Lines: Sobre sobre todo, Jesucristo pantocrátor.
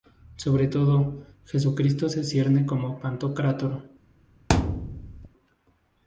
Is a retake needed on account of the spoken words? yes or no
yes